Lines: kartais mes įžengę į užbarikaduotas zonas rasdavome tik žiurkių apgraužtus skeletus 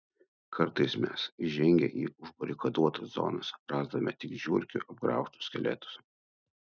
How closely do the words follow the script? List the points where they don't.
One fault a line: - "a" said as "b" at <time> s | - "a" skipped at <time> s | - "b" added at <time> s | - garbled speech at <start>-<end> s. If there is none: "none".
none